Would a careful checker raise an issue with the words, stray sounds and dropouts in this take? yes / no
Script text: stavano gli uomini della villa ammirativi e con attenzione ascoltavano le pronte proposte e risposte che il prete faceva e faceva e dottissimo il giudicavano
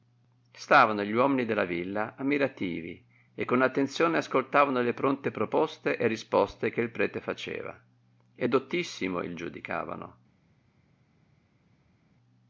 yes